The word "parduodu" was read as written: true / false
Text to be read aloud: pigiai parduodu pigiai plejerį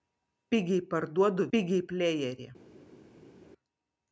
true